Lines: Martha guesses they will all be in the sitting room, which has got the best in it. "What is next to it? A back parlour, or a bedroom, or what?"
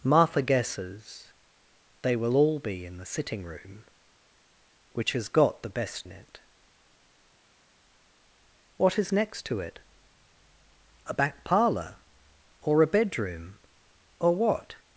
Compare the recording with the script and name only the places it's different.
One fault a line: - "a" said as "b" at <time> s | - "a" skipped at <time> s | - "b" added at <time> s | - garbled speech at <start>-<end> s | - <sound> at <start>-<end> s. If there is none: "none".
none